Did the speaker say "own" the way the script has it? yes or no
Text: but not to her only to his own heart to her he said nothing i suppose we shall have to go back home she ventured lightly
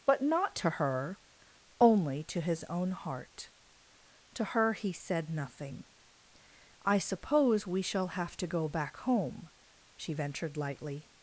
yes